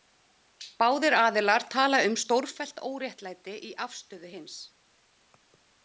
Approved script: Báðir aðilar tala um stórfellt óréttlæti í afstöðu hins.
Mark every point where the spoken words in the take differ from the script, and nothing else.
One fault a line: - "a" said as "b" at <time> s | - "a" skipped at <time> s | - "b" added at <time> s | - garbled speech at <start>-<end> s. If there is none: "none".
none